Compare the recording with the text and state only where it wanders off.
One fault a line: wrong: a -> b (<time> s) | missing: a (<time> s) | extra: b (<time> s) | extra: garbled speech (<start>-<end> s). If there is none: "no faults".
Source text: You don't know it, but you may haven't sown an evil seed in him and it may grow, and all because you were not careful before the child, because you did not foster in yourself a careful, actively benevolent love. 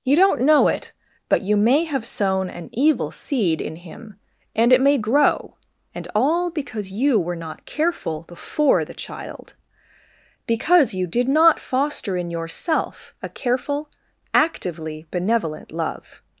wrong: haven't -> have (1.9 s)